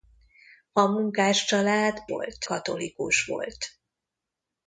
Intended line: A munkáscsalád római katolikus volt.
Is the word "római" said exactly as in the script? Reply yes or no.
no